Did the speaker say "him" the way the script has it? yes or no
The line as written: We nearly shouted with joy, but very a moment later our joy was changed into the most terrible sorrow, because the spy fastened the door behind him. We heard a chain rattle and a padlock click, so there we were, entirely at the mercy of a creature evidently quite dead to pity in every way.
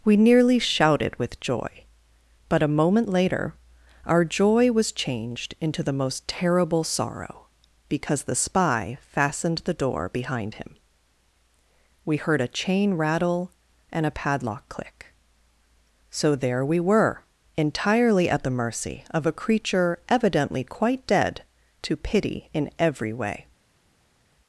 yes